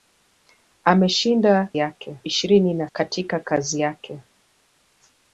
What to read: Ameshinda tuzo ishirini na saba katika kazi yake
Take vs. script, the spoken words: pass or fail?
fail